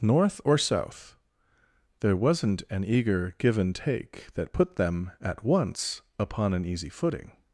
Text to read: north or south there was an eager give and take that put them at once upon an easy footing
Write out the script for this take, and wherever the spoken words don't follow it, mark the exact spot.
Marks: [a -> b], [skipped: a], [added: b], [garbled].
north or south there [was -> wasn't] an eager give and take that put them at once upon an easy footing